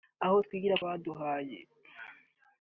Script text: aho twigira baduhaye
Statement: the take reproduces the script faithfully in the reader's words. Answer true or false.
true